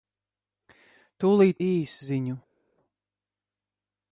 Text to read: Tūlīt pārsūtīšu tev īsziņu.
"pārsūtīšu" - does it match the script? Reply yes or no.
no